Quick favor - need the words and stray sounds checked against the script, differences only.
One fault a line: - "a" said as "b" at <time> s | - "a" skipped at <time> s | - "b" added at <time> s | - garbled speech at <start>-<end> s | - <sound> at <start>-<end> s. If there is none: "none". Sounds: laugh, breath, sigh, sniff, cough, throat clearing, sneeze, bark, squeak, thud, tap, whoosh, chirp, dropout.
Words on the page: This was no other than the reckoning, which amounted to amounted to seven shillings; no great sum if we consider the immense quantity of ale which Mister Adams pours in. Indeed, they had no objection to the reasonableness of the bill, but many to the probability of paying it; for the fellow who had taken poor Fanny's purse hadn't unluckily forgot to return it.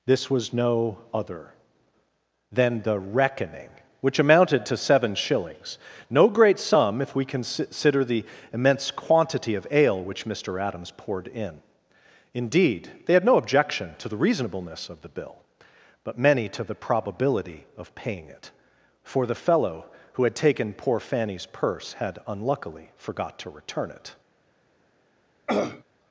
- "amounted to" skipped at 4.8 s
- "pours" said as "poured" at 11.0 s
- "hadn't" said as "had" at 21.9 s
- throat clearing at 25.5-25.8 s